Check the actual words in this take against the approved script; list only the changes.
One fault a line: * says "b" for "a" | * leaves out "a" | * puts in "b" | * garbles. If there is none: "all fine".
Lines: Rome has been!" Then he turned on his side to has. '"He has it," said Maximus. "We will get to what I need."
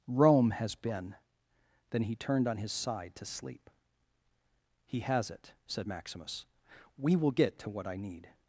* says "sleep" for "has"